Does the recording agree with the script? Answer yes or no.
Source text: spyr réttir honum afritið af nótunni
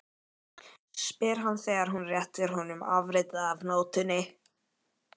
no